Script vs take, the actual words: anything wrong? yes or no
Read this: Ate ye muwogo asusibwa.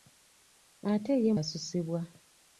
yes